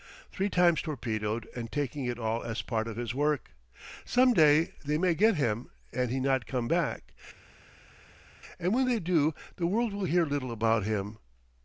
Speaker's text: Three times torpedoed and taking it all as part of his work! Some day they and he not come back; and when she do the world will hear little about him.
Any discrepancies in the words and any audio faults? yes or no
yes